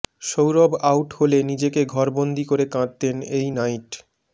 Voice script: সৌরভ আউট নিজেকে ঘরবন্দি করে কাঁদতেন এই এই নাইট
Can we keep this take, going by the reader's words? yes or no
no